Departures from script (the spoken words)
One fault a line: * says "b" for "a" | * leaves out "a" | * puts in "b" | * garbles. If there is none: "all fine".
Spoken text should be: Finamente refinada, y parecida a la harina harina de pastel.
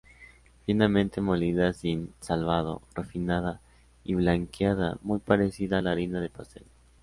* puts in "molida sin salvado"
* puts in "blanqueada muy"
* leaves out "harina"